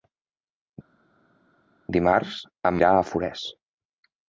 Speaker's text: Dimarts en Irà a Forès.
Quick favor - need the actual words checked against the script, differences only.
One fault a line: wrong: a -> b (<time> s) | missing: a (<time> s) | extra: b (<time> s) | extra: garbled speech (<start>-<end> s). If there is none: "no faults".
no faults